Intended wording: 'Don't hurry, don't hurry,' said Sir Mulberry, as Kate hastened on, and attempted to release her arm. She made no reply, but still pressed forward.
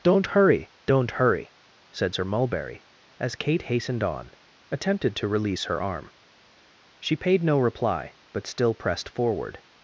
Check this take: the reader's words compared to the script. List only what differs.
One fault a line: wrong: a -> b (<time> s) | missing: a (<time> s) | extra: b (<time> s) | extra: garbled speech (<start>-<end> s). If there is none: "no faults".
missing: and (4.3 s)
wrong: made -> paid (7.2 s)